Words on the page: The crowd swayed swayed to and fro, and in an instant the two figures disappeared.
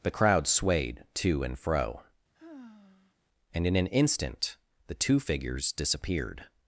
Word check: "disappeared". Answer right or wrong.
right